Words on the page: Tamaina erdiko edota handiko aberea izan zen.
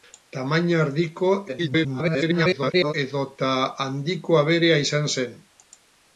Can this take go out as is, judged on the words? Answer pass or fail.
fail